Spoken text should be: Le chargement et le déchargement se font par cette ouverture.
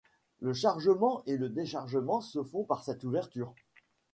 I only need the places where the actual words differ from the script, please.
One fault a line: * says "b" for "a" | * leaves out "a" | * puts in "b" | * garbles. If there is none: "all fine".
all fine